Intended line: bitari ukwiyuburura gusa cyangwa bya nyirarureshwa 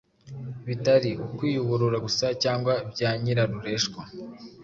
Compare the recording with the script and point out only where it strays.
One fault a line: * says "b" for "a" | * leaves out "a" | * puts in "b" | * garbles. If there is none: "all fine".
all fine